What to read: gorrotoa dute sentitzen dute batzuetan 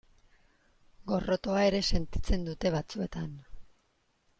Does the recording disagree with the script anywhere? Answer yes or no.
yes